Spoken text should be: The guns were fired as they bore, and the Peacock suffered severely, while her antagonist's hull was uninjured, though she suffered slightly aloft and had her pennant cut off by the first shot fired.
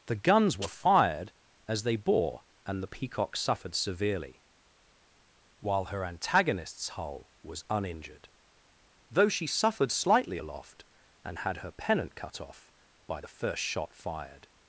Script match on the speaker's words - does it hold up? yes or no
yes